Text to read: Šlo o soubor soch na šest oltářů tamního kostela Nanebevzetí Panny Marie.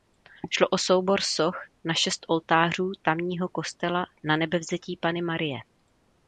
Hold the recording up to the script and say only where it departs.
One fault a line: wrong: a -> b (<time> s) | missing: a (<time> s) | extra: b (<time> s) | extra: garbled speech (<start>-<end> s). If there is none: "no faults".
no faults